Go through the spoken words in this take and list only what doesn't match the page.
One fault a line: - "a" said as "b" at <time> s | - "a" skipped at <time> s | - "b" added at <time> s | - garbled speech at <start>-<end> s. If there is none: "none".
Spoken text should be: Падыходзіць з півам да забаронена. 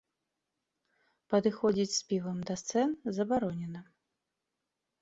- "сцэн" added at 2.6 s